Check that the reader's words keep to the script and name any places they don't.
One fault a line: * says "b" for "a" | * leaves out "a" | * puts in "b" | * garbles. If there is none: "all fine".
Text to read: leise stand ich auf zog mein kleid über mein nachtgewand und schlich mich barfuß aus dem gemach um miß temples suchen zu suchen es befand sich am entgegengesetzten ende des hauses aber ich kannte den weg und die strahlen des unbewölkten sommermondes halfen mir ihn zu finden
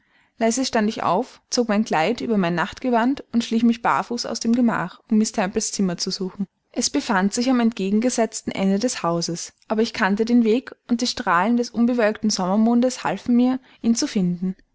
* says "zimmer" for "suchen"